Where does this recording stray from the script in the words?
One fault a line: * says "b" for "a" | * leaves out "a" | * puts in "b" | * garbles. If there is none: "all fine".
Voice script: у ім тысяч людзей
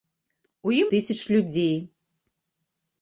all fine